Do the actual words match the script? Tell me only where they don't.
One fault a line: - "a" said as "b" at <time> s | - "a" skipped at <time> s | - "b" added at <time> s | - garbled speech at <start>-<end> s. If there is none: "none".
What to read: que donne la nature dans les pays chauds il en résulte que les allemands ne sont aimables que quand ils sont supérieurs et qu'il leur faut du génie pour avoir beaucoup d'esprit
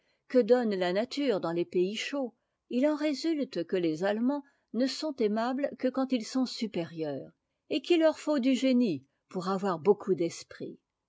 none